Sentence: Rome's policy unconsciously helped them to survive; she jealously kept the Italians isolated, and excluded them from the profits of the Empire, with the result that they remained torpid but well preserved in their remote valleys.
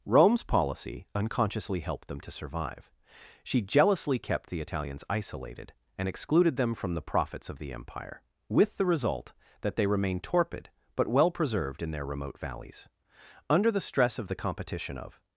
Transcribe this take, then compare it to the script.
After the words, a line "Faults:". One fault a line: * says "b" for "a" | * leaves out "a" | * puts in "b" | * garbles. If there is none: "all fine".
Rome's policy unconsciously helped them to survive; she jealously kept the Italians isolated, and excluded them from the profits of the Empire, with the result that they remained torpid but well preserved in their remote valleys. Under the stress of the competition of
Faults:
* puts in "Under the stress of the competition of"